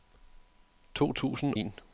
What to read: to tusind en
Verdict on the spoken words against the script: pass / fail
pass